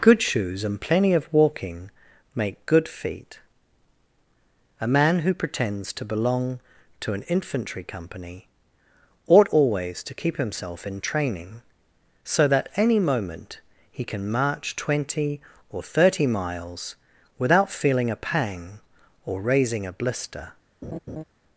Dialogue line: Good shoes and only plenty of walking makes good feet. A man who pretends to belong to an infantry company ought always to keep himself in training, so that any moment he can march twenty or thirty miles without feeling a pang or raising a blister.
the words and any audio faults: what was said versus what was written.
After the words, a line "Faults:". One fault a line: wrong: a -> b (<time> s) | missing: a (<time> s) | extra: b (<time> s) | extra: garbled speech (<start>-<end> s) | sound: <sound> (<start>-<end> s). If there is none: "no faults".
Good shoes and plenty of walking make good feet. A man who pretends to belong to an infantry company ought always to keep himself in training, so that any moment he can march twenty or thirty miles without feeling a pang or raising a blister.
Faults:
missing: only (0.8 s)
wrong: makes -> make (2.3 s)
sound: laugh (20.8-21.2 s)